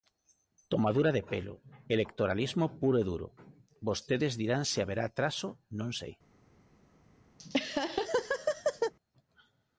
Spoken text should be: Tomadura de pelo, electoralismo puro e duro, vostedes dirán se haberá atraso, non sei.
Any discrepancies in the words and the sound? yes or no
yes